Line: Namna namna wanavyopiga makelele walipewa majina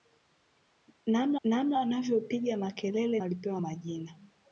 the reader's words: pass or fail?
pass